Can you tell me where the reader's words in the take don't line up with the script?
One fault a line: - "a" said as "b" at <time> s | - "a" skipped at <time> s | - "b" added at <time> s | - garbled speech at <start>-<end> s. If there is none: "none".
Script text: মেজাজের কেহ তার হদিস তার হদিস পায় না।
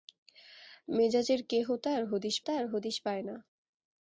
none